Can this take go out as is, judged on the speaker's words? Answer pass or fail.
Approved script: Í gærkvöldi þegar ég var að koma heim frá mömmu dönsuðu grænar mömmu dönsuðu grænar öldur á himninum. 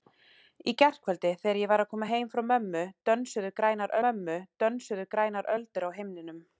pass